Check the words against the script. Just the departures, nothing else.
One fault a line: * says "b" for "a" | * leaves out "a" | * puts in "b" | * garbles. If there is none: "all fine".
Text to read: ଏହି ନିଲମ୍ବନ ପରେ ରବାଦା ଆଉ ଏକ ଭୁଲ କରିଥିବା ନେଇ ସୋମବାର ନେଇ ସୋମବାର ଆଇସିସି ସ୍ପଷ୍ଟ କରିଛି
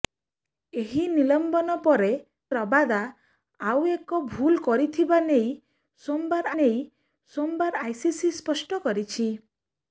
all fine